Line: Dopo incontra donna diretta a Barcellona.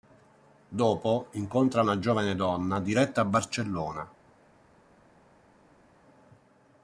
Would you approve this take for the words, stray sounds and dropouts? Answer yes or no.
no